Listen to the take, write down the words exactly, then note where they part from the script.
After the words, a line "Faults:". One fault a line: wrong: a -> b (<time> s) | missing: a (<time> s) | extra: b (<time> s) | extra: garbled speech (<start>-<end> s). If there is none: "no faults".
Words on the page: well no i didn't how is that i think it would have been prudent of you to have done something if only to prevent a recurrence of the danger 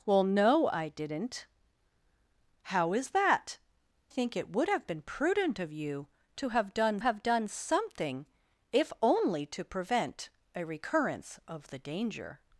well no i didn't how is that think it would have been prudent of you to have done have done something if only to prevent a recurrence of the danger
Faults:
missing: i (3.6 s)
extra: have done (7.0 s)